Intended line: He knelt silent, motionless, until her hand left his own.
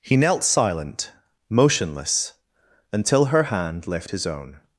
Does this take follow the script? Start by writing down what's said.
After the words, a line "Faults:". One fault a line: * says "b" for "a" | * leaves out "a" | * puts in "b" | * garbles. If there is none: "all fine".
He knelt silent, motionless, until her hand left his own.
Faults:
all fine